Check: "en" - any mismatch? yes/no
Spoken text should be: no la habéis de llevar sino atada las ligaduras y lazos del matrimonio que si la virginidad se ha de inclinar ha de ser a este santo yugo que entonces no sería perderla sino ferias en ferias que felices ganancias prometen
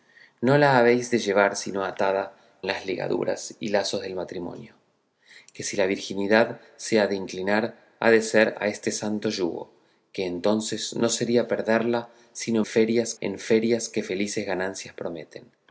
no